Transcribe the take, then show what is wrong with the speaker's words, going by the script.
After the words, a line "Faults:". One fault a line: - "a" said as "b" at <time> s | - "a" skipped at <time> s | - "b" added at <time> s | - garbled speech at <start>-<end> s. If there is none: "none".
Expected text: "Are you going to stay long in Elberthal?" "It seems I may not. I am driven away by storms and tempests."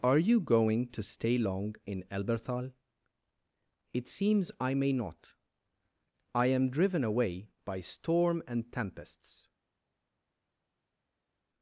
"Are you going to stay long in Elberthal?" "It seems I may not. I am driven away by storm and tempests."
Faults:
- "storms" said as "storm" at 7.8 s